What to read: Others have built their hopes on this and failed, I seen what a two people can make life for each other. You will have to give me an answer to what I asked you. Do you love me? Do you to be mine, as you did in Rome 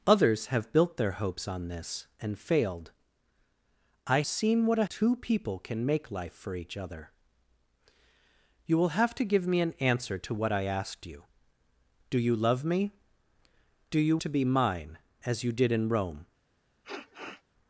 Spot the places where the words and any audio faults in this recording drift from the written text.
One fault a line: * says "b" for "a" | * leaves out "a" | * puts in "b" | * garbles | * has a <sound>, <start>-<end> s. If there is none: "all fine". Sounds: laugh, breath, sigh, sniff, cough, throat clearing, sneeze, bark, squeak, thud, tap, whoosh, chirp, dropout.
* has a sniff, 16.8-17.4 s